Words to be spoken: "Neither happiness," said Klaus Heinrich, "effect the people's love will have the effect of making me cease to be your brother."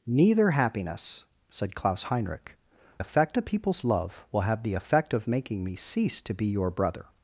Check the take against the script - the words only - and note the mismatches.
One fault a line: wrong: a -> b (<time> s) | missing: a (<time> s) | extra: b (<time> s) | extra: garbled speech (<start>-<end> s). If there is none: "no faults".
no faults